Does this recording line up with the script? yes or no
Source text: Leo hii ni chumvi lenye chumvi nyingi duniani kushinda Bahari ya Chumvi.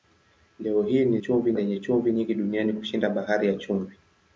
yes